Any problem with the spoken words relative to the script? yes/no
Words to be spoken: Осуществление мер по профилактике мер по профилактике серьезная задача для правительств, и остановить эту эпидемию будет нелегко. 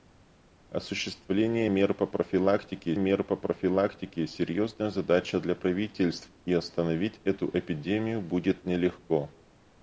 no